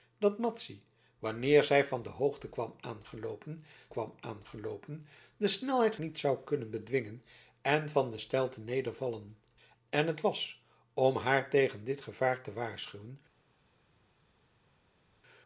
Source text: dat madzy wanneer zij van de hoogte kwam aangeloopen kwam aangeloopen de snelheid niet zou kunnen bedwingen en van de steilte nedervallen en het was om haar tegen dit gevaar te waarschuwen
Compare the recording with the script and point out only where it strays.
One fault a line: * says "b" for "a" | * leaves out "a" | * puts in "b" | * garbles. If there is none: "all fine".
all fine